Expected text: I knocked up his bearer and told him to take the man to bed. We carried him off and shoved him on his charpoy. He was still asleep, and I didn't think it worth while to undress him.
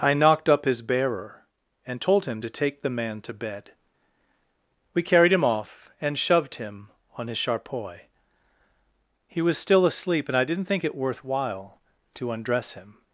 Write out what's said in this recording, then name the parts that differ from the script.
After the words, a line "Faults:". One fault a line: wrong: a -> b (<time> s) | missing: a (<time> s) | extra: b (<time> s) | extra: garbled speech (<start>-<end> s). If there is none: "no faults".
I knocked up his bearer and told him to take the man to bed. We carried him off and shoved him on his charpoy. He was still asleep, and I didn't think it worth while to undress him.
Faults:
no faults